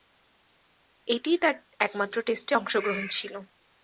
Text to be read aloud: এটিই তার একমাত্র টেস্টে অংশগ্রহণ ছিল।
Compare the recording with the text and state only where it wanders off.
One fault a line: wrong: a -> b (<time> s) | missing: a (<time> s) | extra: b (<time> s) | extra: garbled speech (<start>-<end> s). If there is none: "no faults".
no faults